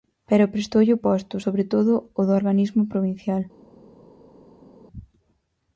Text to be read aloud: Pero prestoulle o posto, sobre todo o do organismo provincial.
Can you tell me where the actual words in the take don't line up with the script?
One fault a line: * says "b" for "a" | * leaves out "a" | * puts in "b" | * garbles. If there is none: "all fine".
all fine